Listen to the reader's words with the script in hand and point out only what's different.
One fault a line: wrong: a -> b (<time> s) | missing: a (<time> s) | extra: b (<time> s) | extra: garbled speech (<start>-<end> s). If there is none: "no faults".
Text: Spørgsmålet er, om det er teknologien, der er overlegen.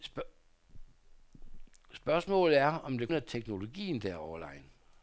no faults